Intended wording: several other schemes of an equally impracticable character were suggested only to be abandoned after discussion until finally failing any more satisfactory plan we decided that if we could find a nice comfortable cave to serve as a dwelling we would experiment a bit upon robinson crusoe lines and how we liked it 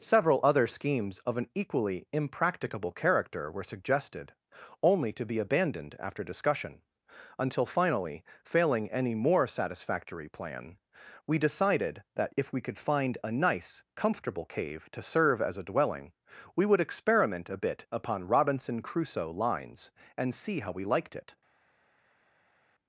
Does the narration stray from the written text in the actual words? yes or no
yes